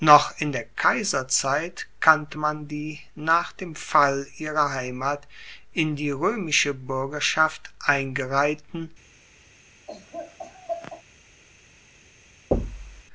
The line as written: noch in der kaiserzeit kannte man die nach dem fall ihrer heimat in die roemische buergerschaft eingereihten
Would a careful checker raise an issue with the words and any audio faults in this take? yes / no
yes